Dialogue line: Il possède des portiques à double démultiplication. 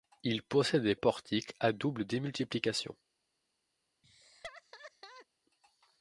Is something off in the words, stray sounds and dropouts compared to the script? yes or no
yes